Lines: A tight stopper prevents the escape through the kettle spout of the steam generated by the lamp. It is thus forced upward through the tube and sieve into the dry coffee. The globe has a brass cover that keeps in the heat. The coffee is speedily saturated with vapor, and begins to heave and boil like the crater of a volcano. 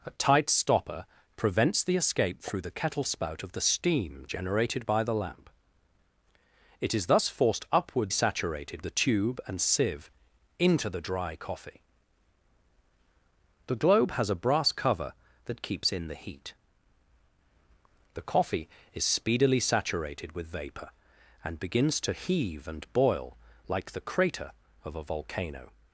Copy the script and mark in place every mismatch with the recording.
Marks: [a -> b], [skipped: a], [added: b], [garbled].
A tight stopper prevents the escape through the kettle spout of the steam generated by the lamp. It is thus forced upward [through -> saturated] the tube and sieve into the dry coffee. The globe has a brass cover that keeps in the heat. The coffee is speedily saturated with vapor, and begins to heave and boil like the crater of a volcano.